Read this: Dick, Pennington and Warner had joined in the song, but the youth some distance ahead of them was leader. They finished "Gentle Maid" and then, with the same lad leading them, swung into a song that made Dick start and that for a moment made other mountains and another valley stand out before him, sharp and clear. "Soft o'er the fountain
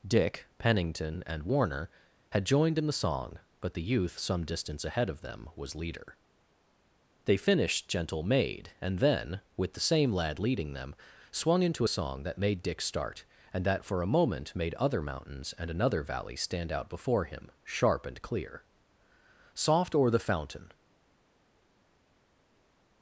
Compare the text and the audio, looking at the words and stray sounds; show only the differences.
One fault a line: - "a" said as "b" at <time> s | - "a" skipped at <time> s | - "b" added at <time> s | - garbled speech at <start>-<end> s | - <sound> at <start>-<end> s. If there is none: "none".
none